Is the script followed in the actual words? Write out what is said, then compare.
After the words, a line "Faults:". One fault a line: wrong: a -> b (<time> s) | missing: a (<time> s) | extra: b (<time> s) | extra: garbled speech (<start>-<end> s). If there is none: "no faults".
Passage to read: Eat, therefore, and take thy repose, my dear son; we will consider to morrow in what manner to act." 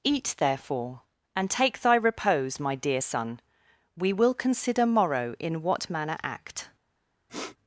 Eat, therefore, and take thy repose, my dear son; we will consider morrow in what manner act."
Faults:
missing: to (4.9 s)
missing: to (6.2 s)